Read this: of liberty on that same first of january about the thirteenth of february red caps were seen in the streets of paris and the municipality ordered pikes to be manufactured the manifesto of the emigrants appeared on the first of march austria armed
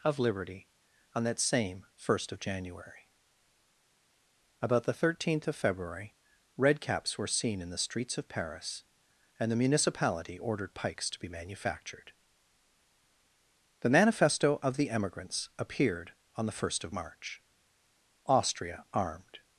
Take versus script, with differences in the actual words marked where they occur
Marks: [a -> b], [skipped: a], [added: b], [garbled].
of liberty on that same first of january about the thirteenth of february red caps were seen in the streets of paris and the municipality ordered pikes to be manufactured the manifesto of the emigrants appeared on the first of march austria armed